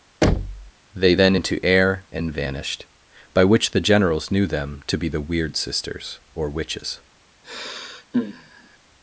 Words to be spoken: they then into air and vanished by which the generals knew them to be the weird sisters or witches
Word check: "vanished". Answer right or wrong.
right